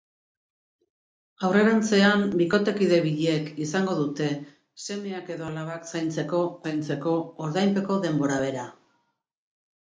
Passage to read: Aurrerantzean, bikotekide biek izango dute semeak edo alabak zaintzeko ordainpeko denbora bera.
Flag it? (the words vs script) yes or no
yes